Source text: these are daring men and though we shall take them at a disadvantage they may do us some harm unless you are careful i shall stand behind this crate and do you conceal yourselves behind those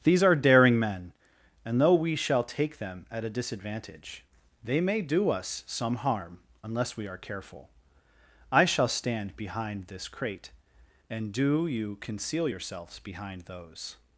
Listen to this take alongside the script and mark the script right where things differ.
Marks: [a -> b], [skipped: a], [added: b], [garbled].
these are daring men and though we shall take them at a disadvantage they may do us some harm unless [you -> we] are careful i shall stand behind this crate and do you conceal yourselves behind those